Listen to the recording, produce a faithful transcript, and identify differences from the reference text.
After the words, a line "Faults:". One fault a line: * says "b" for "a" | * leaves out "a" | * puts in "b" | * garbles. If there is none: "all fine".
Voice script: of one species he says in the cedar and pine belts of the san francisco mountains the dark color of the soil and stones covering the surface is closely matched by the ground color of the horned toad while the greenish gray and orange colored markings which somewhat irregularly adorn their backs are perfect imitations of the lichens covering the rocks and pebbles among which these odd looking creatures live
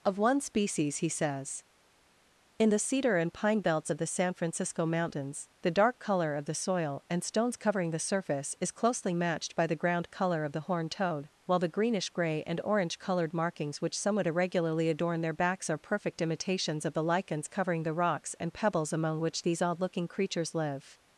of one species he says in the cedar and pine belts of the san francisco mountains the dark color of the soil and stones covering the surface is closely matched by the ground color of the horned toad while the greenish gray and orange colored markings which somewhat irregularly adorn their backs are perfect imitations of the lichens covering the rocks and pebbles among which these odd looking creatures live
Faults:
all fine